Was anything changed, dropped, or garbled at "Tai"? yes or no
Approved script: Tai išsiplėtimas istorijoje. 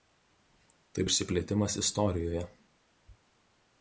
no